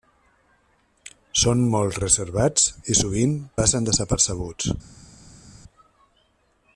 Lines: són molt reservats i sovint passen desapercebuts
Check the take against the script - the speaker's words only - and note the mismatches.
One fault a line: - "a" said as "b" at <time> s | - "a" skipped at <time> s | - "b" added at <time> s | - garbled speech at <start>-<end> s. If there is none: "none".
none